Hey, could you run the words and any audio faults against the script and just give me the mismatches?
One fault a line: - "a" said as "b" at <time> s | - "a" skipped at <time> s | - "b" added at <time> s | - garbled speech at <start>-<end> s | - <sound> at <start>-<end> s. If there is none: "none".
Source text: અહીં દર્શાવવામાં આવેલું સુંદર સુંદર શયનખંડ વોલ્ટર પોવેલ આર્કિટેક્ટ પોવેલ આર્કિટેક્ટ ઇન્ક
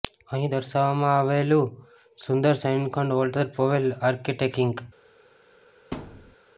- "સુંદર" skipped at 2.6 s
- "પોવેલ આર્કિટેક્ટ" skipped at 4.6 s
- thud at 5.9-6.4 s